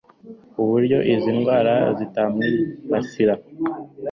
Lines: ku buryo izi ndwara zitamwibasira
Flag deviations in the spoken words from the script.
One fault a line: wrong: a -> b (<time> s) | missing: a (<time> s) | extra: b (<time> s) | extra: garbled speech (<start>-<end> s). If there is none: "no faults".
no faults